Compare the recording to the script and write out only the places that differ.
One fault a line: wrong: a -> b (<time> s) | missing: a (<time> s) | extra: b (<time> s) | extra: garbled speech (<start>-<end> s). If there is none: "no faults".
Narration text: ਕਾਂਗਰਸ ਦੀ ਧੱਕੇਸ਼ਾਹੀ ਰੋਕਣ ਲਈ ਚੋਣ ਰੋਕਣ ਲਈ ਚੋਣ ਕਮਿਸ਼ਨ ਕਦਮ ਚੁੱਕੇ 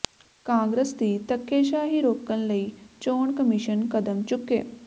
missing: ਰੋਕਣ ਲਈ ਚੋਣ (3.4 s)